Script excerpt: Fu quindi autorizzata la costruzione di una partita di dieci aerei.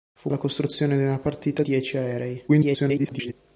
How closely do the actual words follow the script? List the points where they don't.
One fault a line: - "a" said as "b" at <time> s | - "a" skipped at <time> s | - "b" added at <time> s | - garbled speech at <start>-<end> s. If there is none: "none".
- "quindi autorizzata" skipped at 0.3 s
- "di" skipped at 1.6 s
- garbled speech at 2.5-3.3 s